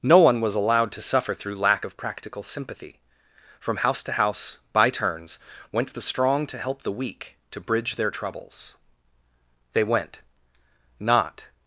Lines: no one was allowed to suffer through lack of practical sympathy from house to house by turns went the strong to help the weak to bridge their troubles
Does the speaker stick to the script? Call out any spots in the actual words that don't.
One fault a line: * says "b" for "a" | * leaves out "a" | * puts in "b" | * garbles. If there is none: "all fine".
* puts in "they went not"